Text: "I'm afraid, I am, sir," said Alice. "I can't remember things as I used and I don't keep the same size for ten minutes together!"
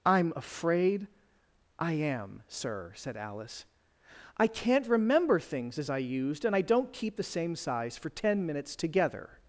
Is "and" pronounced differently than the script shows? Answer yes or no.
no